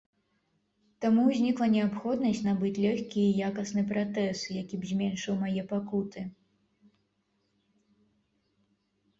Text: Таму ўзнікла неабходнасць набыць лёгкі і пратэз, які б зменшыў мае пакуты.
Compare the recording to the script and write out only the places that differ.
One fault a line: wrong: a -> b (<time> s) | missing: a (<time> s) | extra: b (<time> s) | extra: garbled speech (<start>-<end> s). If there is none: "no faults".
extra: якасны (3.5 s)